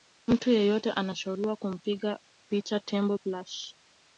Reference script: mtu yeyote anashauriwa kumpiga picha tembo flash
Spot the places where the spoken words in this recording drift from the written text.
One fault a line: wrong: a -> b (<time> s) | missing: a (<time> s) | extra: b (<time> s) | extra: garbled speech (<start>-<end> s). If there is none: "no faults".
no faults